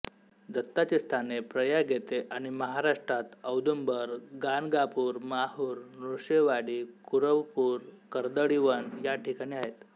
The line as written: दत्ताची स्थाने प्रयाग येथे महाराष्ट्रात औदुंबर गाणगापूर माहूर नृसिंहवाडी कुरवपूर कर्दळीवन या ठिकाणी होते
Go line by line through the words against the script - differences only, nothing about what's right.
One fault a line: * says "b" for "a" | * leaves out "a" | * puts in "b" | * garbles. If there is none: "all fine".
* puts in "आणि"
* says "आहेत" for "होते"